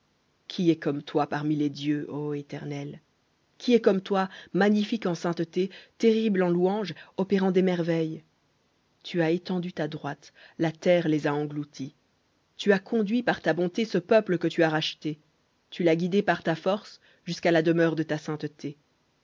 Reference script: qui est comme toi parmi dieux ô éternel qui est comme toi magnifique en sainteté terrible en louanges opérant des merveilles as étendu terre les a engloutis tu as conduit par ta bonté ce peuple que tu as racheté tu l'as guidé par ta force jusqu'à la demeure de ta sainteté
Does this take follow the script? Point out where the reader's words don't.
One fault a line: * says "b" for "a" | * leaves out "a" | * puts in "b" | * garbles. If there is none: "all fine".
* puts in "les"
* puts in "tu"
* puts in "ta droite la"